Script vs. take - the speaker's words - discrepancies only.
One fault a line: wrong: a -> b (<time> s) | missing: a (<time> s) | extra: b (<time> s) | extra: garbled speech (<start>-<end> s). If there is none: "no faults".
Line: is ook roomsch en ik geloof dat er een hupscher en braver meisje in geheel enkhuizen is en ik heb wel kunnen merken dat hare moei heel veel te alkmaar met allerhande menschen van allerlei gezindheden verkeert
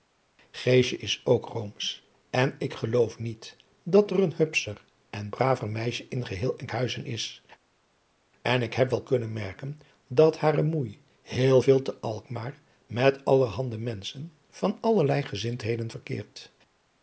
extra: niet (3.2 s)